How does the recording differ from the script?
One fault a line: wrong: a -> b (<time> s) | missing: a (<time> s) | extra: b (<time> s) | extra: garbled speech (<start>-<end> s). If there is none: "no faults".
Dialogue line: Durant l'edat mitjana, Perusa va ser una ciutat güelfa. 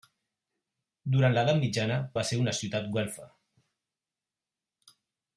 missing: Perusa (2.0 s)